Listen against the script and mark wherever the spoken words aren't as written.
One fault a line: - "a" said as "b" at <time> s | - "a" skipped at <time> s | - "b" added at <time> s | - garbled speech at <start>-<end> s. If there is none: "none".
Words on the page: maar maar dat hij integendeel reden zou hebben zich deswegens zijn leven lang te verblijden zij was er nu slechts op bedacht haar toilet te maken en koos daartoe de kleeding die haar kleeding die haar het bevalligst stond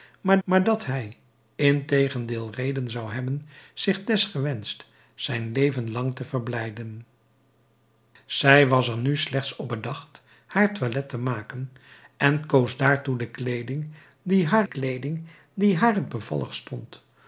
none